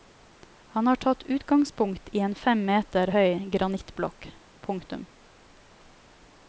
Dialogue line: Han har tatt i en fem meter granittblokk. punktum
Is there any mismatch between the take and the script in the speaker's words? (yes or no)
yes